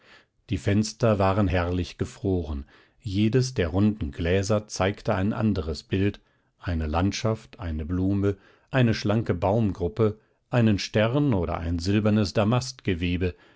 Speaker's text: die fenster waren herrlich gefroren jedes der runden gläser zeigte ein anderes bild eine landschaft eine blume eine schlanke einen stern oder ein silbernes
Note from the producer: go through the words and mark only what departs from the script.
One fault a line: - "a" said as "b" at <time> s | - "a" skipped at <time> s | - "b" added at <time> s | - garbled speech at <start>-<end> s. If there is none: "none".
- "baumgruppe" added at 9.3 s